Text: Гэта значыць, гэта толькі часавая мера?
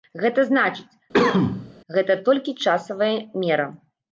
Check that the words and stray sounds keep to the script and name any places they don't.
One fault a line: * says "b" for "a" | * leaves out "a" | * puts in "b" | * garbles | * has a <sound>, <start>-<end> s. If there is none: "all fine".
* has a cough, 1.1-1.7 s